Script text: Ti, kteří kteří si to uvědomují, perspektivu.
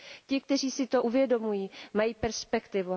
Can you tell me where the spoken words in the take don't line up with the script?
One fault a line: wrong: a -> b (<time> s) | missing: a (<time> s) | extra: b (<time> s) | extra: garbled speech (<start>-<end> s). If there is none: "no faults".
missing: kteří (0.7 s)
extra: mají (1.9 s)